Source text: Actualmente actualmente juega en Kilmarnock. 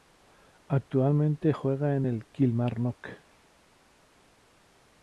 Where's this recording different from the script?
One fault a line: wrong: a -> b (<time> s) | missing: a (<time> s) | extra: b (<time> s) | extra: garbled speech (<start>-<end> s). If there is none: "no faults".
missing: actualmente (1.5 s)
extra: el (2.0 s)